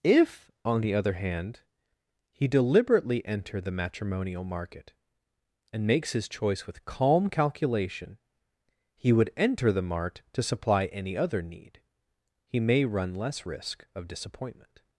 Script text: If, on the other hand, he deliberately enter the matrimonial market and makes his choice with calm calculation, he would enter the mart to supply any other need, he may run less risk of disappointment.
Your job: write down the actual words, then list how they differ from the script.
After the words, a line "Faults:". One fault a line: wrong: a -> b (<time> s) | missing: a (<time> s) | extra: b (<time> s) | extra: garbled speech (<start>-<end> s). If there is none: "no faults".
If, on the other hand, he deliberately enter the matrimonial market and makes his choice with calm calculation, he would enter the mart to supply any other need, he may run less risk of disappointment.
Faults:
no faults